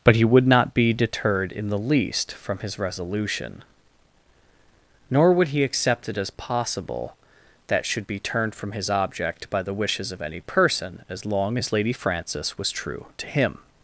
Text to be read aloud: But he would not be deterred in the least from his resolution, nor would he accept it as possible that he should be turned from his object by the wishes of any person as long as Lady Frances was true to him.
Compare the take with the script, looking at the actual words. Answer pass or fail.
fail